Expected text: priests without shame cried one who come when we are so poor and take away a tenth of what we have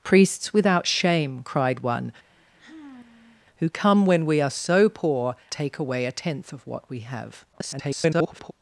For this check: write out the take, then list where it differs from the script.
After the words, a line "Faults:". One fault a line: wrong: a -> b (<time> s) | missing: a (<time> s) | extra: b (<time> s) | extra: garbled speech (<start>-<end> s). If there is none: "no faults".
priests without shame cried one who come when we are so poor take away a tenth of what we have [garbled]
Faults:
missing: and (5.4 s)
extra: garbled speech (7.5-8.5 s)